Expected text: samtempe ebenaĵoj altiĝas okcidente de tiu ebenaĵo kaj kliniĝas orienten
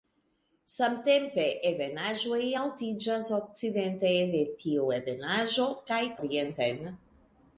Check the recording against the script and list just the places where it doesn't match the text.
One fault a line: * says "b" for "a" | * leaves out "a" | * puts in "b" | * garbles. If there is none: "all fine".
* leaves out "kliniĝas"